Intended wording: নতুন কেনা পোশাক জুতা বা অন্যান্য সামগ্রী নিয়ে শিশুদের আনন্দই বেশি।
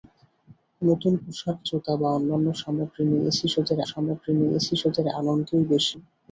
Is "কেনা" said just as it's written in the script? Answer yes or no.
no